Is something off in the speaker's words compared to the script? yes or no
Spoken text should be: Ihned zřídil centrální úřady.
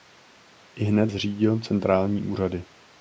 no